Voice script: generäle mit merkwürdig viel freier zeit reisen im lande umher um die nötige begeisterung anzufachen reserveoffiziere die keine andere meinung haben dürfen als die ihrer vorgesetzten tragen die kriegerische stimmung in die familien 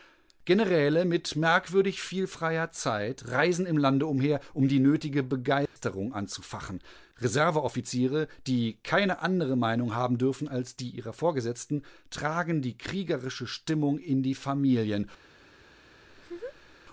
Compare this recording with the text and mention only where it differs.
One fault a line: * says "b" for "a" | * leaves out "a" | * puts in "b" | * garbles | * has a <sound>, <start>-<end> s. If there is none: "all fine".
* has a dropout, 5.7-5.8 s
* has a laugh, 16.1-16.8 s